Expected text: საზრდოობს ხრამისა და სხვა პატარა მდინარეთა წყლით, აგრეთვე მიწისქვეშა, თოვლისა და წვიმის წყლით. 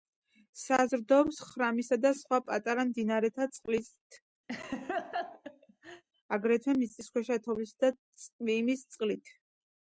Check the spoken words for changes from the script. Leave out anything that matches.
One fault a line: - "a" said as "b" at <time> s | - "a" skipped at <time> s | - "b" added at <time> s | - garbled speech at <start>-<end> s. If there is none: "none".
none